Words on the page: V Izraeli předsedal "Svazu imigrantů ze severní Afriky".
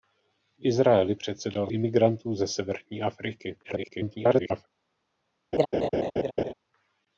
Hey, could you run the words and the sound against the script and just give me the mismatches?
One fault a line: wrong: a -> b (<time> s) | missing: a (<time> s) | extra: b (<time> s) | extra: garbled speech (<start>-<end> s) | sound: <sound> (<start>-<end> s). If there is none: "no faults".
missing: Svazu (1.7 s)
extra: garbled speech (3.6-4.7 s)
sound: laugh (5.5-6.5 s)